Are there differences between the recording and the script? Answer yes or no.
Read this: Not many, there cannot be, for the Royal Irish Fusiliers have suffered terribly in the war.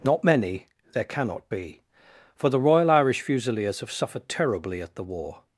yes